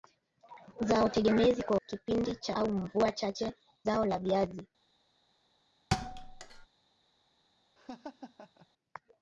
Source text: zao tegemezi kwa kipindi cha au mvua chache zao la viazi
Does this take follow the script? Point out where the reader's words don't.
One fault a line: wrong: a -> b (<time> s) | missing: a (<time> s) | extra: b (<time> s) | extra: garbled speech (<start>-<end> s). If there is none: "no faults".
no faults